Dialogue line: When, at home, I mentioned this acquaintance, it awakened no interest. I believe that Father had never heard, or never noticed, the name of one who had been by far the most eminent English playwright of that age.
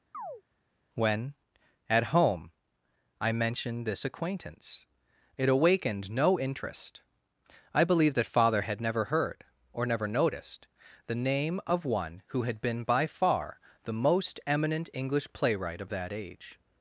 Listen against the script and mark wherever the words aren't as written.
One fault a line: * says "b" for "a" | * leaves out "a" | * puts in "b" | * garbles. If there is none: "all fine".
all fine